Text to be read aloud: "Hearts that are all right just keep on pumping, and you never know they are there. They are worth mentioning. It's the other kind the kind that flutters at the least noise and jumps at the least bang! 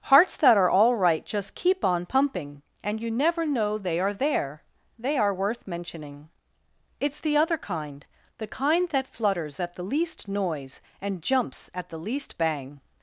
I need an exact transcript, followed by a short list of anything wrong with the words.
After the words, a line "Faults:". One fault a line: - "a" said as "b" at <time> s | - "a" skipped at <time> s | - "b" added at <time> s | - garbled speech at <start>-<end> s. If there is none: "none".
"Hearts that are all right just keep on pumping, and you never know they are there. They are worth mentioning. It's the other kind the kind that flutters at the least noise and jumps at the least bang!
Faults:
none